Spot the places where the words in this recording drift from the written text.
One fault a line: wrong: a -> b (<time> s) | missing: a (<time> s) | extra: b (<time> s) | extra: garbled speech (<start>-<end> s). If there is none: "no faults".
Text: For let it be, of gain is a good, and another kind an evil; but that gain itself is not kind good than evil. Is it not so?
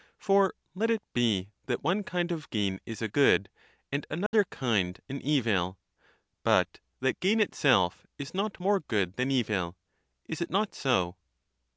extra: that one kind (1.7 s)
wrong: kind -> more (8.6 s)